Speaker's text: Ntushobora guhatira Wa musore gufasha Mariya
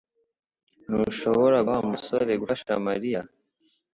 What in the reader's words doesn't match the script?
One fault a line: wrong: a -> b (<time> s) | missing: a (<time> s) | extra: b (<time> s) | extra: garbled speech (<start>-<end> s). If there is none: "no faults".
missing: guhatira (1.6 s)